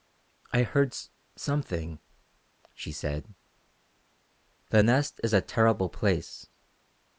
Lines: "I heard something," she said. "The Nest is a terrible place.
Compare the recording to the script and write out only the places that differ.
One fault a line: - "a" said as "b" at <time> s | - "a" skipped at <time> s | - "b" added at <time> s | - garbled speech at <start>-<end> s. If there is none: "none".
none